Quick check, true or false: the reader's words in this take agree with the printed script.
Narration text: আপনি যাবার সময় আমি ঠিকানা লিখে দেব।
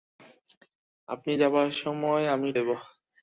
false